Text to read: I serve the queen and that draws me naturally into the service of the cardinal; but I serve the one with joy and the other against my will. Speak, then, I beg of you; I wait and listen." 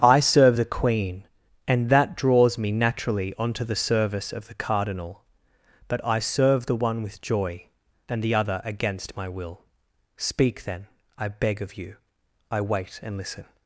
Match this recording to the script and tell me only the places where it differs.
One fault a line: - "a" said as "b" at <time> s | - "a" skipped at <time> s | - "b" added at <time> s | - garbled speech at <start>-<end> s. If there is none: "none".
- "into" said as "onto" at 3.4 s